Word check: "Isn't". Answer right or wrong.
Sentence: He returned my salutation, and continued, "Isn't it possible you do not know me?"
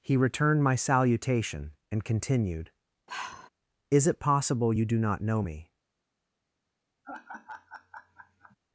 wrong